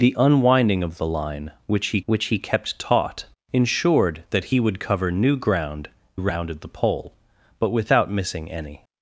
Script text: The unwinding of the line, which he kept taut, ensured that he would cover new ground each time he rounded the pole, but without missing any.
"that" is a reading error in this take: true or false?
false